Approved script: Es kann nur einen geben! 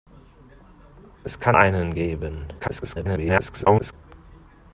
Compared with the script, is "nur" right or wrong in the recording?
wrong